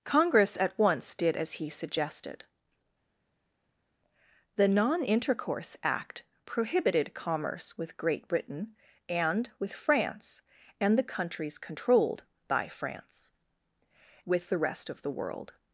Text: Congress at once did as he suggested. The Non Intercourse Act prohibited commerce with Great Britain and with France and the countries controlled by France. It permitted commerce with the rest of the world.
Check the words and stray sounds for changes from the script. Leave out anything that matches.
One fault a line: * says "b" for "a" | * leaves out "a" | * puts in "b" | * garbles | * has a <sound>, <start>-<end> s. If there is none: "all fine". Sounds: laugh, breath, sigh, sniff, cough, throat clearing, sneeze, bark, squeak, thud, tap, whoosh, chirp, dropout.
* leaves out "It permitted commerce"